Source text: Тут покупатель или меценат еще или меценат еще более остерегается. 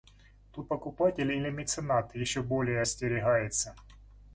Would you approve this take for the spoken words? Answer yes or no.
no